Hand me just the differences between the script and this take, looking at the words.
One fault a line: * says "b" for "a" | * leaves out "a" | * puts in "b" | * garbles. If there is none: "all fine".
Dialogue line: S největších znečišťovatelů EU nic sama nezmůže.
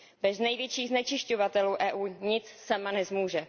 * says "Bez" for "S"